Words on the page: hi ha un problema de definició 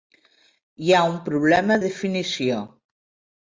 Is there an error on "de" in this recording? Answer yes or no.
yes